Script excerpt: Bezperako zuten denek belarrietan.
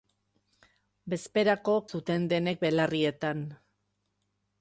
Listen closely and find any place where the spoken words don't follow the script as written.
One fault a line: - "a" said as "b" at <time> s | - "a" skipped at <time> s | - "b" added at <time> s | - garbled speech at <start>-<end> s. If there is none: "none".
none